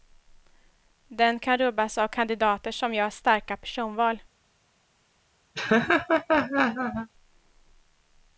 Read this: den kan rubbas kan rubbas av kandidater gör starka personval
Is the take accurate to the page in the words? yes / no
no